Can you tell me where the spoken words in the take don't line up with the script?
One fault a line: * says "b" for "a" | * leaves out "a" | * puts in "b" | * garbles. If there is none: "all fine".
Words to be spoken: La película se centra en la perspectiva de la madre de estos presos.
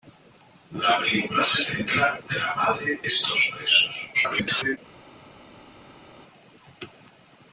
* leaves out "en la perspectiva"
* leaves out "de"
* garbles